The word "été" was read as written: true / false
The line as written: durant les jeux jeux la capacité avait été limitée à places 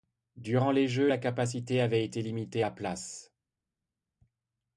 true